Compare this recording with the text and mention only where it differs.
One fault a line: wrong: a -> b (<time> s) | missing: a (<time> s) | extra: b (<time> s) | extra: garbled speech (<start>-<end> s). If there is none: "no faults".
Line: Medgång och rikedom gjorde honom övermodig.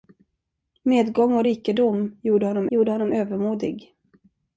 extra: gjorde honom (2.7 s)